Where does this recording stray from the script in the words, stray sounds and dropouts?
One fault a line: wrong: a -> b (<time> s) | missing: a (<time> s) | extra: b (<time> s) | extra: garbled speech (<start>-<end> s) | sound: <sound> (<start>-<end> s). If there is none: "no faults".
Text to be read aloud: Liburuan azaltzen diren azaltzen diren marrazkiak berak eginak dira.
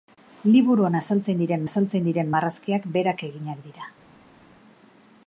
no faults